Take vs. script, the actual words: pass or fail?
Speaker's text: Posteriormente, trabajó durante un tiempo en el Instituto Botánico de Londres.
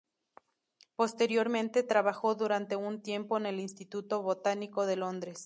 pass